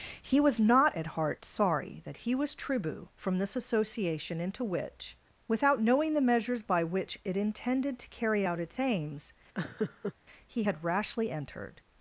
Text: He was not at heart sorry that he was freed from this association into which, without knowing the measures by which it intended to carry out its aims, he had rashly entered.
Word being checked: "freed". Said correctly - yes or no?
no